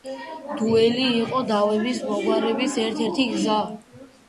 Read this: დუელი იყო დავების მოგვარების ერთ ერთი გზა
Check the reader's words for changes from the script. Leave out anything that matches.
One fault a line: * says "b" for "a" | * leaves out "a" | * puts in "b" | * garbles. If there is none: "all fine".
all fine